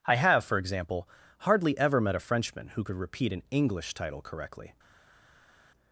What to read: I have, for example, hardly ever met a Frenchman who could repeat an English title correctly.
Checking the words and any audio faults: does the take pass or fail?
pass